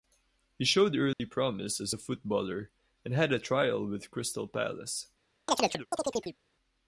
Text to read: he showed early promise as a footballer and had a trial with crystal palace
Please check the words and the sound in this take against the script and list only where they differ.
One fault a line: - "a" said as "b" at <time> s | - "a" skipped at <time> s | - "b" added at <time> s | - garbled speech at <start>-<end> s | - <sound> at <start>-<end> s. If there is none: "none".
- dropout at 1.1-1.2 s
- chirp at 5.5-6.4 s